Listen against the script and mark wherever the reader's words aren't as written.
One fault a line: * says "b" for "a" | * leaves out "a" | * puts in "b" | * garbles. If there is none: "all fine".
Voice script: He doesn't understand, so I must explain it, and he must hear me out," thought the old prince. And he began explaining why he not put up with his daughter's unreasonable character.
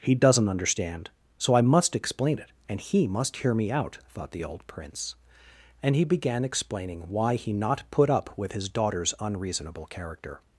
all fine